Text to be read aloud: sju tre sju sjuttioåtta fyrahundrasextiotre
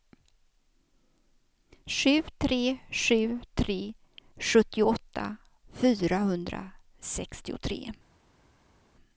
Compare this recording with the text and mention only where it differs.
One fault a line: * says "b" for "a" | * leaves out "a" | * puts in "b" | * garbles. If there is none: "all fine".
* puts in "tre"